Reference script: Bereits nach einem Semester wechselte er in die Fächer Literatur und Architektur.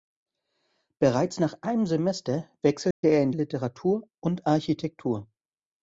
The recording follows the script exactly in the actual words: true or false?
false